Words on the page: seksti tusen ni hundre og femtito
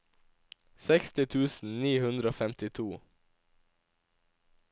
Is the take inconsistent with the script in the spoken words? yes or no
no